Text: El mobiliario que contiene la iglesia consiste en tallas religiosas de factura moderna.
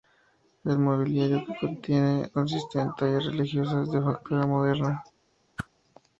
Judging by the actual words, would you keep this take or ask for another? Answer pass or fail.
fail